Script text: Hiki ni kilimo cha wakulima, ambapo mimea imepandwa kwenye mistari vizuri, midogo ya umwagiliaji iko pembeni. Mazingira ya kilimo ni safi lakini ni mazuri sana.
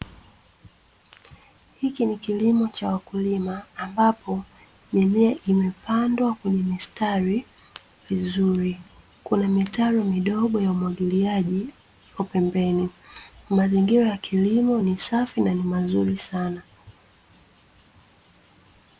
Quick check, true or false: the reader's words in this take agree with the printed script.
false